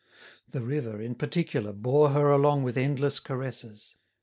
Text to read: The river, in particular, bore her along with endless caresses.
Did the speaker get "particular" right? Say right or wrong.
right